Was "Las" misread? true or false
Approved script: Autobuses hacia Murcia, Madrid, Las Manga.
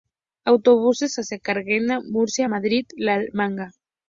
true